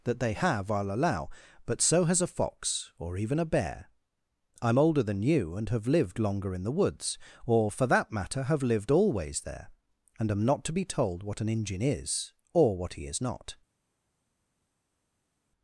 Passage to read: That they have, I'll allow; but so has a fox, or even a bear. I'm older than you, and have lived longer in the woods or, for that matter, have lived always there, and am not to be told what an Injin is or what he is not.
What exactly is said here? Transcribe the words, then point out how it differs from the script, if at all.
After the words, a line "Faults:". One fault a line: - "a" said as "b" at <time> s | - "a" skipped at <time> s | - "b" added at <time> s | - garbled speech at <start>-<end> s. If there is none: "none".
That they have, I'll allow; but so has a fox, or even a bear. I'm older than you, and have lived longer in the woods or, for that matter, have lived always there, and am not to be told what an Injin is or what he is not.
Faults:
none